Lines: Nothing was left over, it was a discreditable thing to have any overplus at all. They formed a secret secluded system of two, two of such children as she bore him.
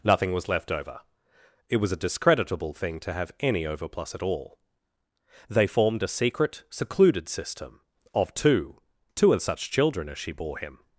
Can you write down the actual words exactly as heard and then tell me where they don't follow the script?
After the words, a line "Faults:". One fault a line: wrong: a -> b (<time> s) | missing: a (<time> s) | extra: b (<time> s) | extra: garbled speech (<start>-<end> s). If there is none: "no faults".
Nothing was left over, it was a discreditable thing to have any overplus at all. They formed a secret secluded system of two, two of such children as she bore him.
Faults:
no faults